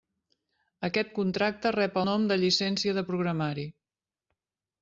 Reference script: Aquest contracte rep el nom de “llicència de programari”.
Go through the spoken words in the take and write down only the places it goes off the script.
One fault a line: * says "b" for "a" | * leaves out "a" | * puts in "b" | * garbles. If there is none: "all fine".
* leaves out "el"